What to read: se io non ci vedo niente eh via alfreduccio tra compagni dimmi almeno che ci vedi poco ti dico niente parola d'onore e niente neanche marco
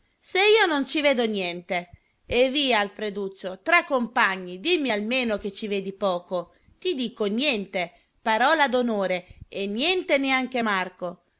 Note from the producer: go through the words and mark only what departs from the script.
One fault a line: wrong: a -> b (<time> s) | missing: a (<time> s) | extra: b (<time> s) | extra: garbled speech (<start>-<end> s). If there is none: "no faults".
no faults